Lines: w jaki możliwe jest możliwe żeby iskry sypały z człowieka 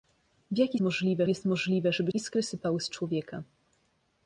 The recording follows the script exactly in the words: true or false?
true